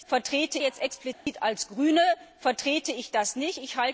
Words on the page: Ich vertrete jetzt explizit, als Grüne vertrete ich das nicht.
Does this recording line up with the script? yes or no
yes